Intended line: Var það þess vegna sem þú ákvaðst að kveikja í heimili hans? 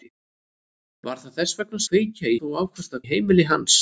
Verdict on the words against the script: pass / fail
fail